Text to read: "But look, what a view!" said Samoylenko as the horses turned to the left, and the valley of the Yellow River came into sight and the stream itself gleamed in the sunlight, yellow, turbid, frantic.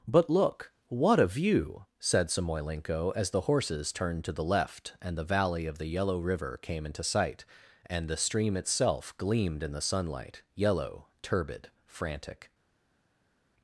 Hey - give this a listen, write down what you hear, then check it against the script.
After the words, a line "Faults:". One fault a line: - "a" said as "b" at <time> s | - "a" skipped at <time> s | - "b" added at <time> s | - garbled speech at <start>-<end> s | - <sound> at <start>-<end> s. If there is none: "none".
"But look, what a view!" said Samoylenko as the horses turned to the left, and the valley of the Yellow River came into sight and the stream itself gleamed in the sunlight, yellow, turbid, frantic.
Faults:
none